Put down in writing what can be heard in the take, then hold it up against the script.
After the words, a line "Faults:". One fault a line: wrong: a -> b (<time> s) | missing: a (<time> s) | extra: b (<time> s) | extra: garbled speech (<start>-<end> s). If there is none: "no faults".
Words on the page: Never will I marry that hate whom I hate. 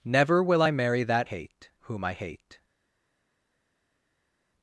Never will I marry that hate whom I hate.
Faults:
no faults